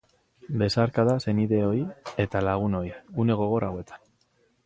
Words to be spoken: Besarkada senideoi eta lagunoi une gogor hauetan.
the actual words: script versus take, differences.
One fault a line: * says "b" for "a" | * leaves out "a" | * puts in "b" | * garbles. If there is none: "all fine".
all fine